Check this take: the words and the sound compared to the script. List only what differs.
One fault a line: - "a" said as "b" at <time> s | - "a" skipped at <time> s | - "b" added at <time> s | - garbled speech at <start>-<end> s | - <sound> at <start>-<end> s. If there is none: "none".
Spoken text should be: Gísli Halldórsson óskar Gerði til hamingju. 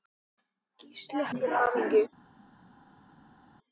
- "Halldórsson óskar Gerði" skipped at 1.2 s